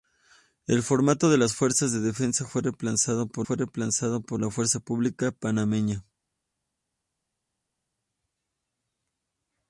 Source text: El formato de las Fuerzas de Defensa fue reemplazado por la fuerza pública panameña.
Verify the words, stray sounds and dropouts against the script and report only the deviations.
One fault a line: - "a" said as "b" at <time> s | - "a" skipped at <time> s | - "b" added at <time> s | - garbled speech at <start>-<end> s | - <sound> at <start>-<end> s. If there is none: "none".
- "fue reemplazado por" added at 3.4 s